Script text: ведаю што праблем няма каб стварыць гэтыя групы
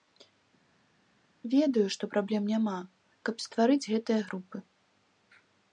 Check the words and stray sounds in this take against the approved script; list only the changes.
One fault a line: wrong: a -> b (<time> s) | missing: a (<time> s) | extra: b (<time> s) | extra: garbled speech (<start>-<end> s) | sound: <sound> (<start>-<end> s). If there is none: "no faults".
no faults